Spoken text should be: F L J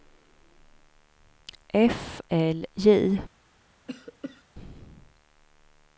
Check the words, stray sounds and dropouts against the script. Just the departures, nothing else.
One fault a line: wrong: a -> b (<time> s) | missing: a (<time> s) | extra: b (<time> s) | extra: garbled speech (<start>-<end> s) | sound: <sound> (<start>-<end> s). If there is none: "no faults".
sound: cough (3.9-4.4 s)